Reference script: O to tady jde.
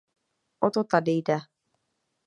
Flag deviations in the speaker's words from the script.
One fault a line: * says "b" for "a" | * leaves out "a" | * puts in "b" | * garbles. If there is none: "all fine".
all fine